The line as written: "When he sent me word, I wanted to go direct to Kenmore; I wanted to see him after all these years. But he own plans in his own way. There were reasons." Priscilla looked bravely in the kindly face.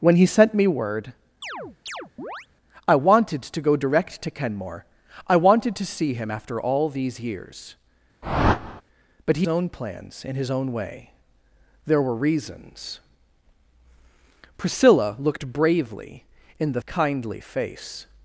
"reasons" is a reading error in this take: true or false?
false